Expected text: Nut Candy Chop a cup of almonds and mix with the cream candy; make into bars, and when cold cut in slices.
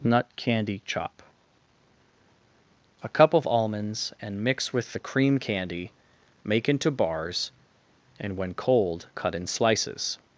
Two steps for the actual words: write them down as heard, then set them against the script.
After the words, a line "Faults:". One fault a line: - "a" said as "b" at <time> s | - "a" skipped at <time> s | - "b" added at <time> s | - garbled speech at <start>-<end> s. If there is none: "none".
Nut Candy Chop a cup of almonds and mix with the cream candy; make into bars, and when cold cut in slices.
Faults:
none